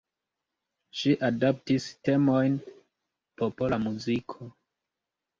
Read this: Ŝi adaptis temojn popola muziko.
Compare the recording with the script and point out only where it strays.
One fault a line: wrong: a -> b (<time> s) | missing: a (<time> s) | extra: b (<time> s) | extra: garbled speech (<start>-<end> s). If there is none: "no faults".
no faults